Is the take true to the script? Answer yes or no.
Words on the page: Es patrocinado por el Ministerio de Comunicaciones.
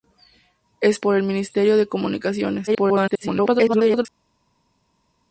no